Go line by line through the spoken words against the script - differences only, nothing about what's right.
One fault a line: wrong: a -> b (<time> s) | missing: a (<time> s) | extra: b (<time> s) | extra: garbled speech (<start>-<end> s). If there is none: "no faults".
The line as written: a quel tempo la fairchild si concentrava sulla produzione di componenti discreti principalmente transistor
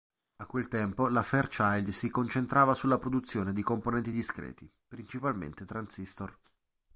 no faults